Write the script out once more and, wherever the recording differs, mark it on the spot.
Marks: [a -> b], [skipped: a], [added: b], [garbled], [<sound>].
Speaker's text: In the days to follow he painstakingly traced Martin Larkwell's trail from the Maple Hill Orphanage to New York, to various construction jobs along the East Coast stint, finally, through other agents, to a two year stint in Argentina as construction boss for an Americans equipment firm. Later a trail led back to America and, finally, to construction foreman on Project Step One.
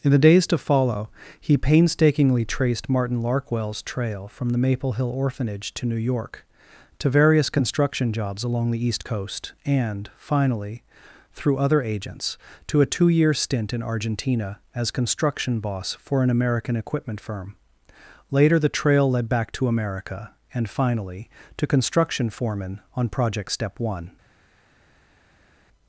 In the days to follow he painstakingly traced Martin Larkwell's trail from the Maple Hill Orphanage to New York, to various construction jobs along the East Coast [stint, -> and] finally, through other agents, to a two year stint in Argentina as construction boss for an [Americans -> American] equipment firm. Later [a -> the] trail led back to America and, finally, to construction foreman on Project Step One.